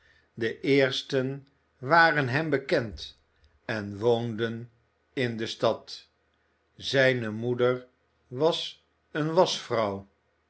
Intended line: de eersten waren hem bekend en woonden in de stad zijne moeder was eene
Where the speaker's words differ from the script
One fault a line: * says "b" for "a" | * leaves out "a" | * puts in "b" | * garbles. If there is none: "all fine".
all fine